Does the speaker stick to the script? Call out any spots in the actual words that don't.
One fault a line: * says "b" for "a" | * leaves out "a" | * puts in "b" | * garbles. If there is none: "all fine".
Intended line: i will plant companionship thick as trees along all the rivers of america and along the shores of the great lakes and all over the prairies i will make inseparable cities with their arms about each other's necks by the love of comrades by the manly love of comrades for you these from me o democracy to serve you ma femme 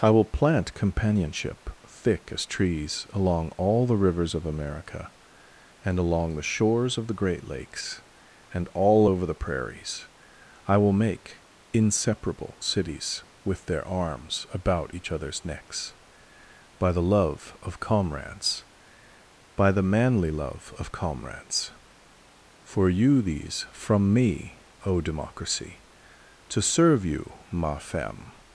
all fine